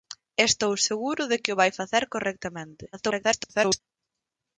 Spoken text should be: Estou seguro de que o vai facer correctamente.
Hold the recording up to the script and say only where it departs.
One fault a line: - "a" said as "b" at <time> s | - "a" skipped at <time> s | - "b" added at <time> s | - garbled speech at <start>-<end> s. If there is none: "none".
- garbled speech at 2.9-3.8 s